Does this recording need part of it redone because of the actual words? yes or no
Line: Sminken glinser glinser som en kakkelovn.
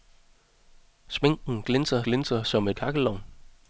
no